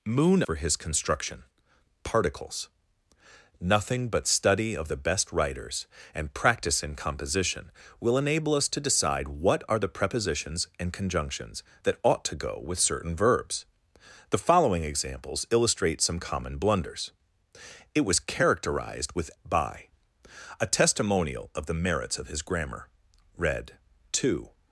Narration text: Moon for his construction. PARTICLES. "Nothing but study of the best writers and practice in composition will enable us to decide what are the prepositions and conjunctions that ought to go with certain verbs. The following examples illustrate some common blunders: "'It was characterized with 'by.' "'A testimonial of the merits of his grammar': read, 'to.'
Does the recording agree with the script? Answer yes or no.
yes